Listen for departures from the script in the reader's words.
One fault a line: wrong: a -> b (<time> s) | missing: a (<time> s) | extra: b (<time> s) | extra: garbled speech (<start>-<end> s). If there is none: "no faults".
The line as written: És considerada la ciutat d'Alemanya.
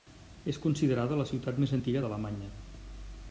extra: més antiga (1.6 s)